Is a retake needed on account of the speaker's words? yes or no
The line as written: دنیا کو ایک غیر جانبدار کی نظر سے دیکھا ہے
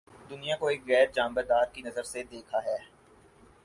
no